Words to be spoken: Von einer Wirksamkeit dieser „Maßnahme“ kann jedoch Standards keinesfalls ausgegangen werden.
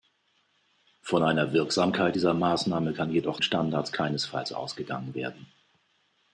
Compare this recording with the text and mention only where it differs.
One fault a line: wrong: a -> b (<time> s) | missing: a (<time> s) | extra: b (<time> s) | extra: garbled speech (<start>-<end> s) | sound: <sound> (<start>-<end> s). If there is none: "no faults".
no faults